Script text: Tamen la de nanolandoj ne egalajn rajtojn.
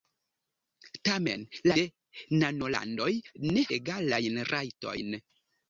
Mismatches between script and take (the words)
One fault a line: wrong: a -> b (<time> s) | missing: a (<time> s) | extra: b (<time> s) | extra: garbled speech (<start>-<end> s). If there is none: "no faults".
no faults